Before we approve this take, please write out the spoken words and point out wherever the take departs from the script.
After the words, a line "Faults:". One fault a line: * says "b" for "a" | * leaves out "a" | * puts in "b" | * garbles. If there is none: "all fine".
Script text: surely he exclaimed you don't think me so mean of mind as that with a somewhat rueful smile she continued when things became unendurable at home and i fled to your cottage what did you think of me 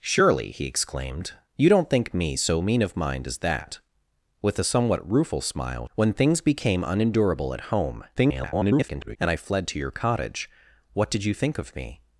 surely he exclaimed you don't think me so mean of mind as that with a somewhat rueful smile when things became unendurable at home [garbled] and i fled to your cottage what did you think of me
Faults:
* leaves out "she continued"
* garbles